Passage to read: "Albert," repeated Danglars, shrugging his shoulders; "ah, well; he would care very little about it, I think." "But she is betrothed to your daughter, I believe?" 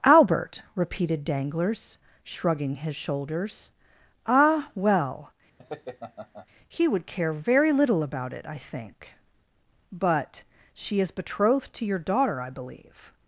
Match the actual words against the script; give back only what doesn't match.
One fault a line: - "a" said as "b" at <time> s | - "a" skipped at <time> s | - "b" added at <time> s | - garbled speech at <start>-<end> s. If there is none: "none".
none